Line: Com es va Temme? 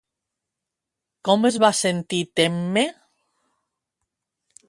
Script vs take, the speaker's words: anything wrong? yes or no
yes